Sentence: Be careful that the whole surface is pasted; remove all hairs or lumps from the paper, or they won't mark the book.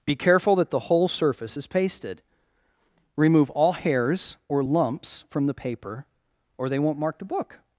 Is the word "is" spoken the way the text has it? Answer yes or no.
yes